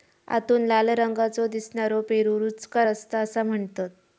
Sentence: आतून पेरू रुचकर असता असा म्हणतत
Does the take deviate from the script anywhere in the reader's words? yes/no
yes